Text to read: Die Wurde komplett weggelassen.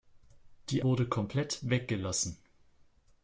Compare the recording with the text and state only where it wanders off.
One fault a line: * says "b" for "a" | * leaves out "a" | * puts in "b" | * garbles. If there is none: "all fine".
all fine